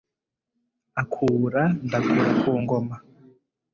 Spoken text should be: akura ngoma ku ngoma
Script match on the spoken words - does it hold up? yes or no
no